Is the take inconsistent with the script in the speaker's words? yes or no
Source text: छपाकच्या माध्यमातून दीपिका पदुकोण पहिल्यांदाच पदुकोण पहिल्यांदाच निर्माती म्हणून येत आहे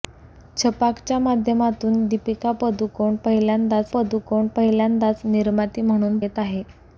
no